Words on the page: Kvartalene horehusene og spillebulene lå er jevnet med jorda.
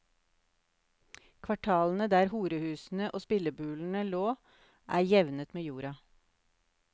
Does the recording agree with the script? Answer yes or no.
no